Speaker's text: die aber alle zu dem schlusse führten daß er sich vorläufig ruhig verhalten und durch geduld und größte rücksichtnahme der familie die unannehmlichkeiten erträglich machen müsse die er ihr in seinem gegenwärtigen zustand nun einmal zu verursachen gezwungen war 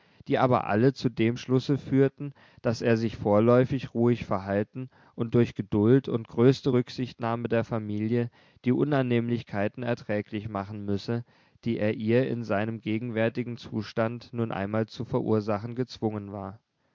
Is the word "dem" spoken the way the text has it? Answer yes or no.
yes